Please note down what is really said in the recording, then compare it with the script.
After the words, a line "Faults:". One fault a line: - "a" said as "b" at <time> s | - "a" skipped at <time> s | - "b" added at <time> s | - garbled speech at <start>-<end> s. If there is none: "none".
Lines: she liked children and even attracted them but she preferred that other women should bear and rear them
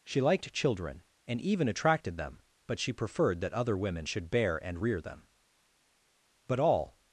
she liked children and even attracted them but she preferred that other women should bear and rear them but all
Faults:
- "but all" added at 6.5 s